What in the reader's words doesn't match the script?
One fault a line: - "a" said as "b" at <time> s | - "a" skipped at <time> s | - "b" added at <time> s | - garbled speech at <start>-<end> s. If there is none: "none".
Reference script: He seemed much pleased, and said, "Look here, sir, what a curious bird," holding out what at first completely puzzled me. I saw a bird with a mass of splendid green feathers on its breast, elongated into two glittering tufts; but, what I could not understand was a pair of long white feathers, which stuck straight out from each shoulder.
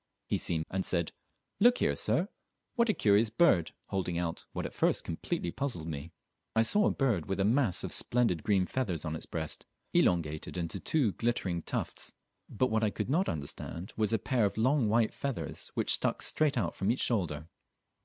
- "much pleased" skipped at 0.7 s